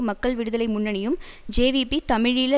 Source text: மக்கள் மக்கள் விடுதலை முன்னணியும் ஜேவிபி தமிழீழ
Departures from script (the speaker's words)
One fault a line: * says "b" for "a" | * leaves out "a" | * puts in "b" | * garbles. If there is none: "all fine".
* leaves out "மக்கள்"